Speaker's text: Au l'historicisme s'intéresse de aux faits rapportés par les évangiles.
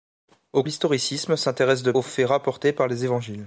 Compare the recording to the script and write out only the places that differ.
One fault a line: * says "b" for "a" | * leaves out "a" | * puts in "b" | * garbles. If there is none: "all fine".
all fine